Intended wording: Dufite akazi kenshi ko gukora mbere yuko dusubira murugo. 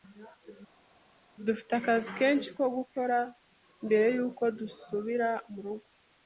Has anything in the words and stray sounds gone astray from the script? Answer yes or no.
no